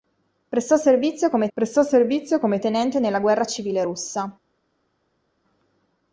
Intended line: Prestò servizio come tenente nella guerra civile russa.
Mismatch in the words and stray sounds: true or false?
true